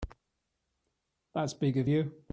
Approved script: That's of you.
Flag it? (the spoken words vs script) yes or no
yes